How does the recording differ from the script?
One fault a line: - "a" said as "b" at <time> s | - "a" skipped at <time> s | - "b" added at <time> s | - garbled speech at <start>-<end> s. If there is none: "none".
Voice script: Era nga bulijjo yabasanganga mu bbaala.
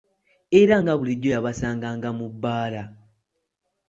none